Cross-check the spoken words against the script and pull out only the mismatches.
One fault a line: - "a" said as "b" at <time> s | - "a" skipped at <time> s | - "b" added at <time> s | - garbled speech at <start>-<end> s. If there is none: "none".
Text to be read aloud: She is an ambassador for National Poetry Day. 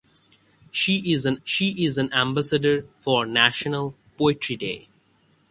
- "she is an" added at 1.4 s